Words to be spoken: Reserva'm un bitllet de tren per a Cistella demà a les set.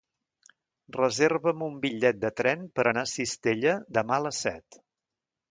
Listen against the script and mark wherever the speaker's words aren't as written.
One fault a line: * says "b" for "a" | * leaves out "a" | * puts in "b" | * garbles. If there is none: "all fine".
* puts in "anar"